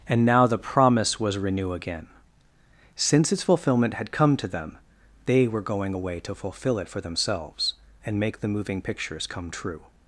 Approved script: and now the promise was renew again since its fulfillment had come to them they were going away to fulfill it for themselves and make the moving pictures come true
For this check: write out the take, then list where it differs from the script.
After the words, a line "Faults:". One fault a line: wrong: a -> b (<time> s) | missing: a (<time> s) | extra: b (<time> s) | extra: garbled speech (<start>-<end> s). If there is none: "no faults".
and now the promise was renew again since its fulfillment had come to them they were going away to fulfill it for themselves and make the moving pictures come true
Faults:
no faults